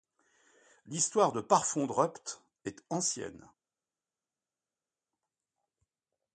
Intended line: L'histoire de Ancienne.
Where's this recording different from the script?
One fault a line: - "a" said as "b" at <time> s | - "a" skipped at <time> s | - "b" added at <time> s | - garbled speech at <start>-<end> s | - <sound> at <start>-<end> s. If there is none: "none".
- "Parfondrupt est" added at 1.4 s